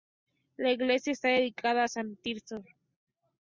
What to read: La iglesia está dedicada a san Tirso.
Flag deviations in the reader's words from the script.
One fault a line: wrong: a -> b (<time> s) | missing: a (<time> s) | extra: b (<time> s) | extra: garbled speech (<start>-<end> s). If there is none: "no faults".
no faults